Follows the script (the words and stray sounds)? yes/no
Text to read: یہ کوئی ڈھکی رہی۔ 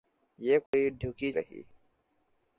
no